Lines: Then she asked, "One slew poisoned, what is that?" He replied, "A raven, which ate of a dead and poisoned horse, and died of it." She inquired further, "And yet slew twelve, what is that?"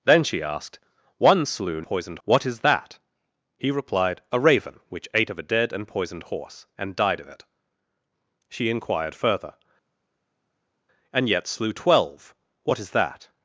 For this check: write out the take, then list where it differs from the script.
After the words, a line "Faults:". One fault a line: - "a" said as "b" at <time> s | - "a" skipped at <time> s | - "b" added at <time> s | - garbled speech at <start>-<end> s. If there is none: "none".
Then she asked, "One slew poisoned, what is that?" He replied, "A raven, which ate of a dead and poisoned horse, and died of it." She inquired further, "And yet slew twelve, what is that?"
Faults:
none